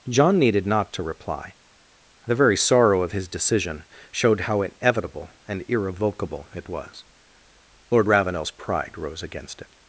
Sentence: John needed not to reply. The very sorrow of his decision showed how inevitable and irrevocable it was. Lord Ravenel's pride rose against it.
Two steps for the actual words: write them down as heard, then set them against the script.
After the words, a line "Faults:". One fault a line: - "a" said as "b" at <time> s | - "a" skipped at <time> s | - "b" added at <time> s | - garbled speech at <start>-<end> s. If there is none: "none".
John needed not to reply. The very sorrow of his decision showed how inevitable and irrevocable it was. Lord Ravenel's pride rose against it.
Faults:
none